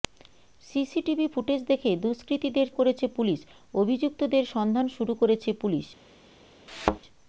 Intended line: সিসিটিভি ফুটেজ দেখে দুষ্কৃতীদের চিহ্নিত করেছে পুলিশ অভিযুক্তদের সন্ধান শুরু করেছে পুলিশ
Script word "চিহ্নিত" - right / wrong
wrong